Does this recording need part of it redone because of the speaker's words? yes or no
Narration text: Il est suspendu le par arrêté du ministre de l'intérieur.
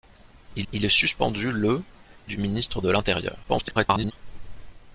yes